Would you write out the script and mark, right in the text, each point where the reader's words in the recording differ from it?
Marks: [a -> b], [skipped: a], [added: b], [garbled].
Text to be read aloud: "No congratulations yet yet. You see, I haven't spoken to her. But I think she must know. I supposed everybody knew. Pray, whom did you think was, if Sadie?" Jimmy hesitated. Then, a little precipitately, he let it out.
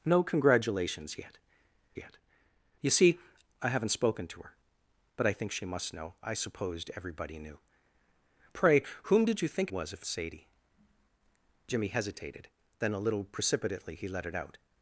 "No congratulations yet yet. You see, I haven't spoken to her. But I think she must know. I supposed everybody knew. Pray, whom did you think was, if Sadie?" Jimmy hesitated. Then, a little precipitately, he let it out.